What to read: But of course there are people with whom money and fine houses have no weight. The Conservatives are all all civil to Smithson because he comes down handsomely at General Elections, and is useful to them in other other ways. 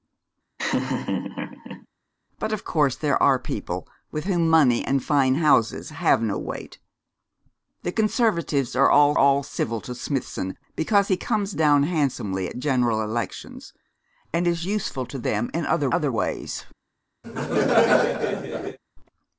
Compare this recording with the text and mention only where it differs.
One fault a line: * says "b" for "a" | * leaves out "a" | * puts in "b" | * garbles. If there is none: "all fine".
all fine